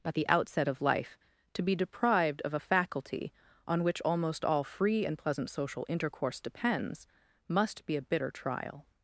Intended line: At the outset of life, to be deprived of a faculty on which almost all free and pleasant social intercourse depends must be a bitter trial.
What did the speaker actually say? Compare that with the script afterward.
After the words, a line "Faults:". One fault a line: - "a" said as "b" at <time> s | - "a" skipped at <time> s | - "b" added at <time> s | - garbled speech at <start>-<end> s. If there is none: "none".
At the outset of life, to be deprived of a faculty on which almost all free and pleasant social intercourse depends must be a bitter trial.
Faults:
none